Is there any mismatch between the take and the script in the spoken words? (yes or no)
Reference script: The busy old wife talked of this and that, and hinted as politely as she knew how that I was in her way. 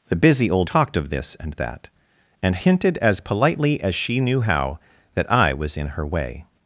yes